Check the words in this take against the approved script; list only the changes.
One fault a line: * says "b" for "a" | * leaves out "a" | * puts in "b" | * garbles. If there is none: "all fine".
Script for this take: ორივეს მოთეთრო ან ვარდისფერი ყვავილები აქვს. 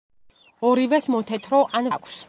* leaves out "ვარდისფერი ყვავილები"